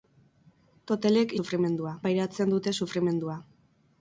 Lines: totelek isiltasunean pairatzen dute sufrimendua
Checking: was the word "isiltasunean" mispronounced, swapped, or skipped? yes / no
yes